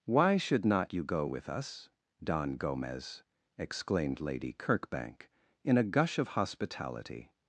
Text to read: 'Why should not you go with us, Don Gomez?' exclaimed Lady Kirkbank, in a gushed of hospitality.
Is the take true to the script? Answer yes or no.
no